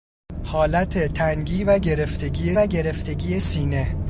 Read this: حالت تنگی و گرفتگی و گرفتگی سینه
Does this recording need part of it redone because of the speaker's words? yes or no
no